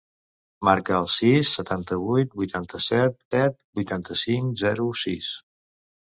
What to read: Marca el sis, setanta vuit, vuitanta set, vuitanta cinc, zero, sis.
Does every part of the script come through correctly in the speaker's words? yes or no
no